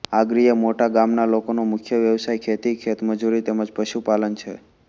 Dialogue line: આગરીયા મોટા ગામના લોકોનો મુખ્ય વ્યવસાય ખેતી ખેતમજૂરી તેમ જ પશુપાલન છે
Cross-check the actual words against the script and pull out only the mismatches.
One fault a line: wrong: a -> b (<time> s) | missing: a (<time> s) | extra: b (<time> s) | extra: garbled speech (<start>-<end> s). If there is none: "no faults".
no faults